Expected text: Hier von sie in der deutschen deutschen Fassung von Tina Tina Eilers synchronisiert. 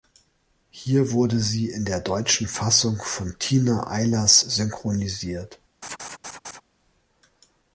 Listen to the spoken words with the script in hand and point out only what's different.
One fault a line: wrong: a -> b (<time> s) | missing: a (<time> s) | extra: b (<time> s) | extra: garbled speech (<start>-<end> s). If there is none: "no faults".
wrong: von -> wurde (1.1 s)
missing: deutschen (2.5 s)
missing: Tina (3.9 s)